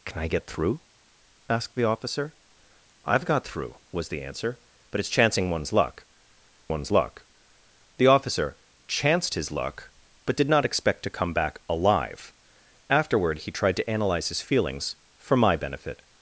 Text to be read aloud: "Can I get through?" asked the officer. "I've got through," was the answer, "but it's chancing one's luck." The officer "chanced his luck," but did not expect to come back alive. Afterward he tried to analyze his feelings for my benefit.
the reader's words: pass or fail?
fail